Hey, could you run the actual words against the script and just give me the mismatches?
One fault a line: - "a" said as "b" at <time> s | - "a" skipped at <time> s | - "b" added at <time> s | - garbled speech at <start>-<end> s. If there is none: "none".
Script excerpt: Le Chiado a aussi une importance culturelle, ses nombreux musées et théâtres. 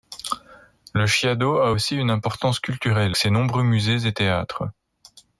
none